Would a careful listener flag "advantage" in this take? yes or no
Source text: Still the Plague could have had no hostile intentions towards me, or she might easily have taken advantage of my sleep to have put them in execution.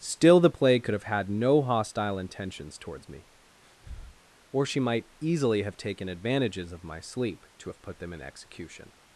yes